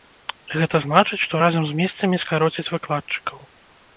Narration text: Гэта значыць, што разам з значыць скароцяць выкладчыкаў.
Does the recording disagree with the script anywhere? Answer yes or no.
yes